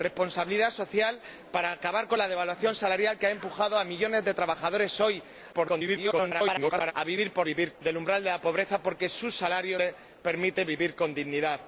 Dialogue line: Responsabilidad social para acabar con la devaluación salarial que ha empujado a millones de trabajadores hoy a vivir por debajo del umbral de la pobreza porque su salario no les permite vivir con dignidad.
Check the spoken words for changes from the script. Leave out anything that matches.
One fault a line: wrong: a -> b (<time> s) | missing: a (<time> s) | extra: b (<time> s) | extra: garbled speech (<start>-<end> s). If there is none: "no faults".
extra: garbled speech (5.5-6.9 s)
wrong: debajo -> vivir (7.4 s)
missing: no (9.8 s)